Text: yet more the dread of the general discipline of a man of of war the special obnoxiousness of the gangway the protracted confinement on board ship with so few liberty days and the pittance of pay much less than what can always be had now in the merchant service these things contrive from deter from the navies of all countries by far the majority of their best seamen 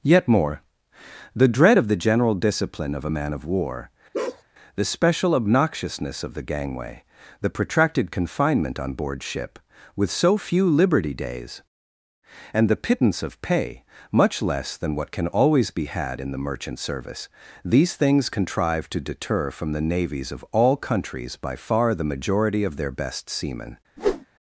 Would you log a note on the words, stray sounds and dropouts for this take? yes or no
yes